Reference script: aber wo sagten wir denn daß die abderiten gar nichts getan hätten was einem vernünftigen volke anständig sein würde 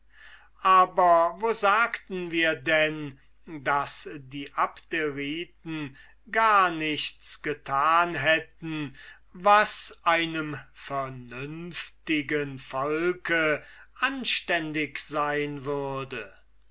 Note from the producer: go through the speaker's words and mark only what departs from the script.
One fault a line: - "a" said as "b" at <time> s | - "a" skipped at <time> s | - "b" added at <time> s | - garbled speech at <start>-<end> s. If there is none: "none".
none